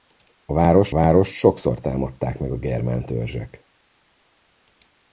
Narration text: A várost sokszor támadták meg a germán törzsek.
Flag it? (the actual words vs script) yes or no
yes